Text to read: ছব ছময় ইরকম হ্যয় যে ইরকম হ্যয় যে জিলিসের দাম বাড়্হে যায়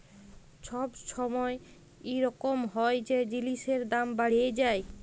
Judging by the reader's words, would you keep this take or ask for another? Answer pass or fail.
fail